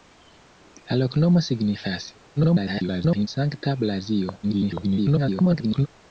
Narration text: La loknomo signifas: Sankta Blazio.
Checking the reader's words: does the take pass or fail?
fail